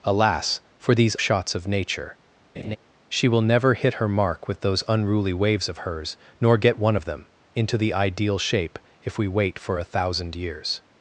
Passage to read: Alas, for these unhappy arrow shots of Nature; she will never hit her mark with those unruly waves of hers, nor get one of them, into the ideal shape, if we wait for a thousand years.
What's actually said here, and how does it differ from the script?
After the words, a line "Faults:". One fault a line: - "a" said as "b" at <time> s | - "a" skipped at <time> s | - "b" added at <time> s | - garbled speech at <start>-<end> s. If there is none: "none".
Alas, for these shots of Nature; she will never hit her mark with those unruly waves of hers, nor get one of them, into the ideal shape, if we wait for a thousand years.
Faults:
- "unhappy arrow" skipped at 1.1 s